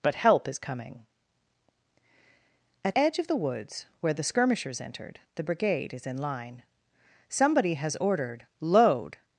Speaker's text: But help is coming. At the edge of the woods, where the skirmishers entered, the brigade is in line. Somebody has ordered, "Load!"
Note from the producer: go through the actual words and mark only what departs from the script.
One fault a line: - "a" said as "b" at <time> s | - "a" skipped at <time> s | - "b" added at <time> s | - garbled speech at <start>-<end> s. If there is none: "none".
- "the" skipped at 3.0 s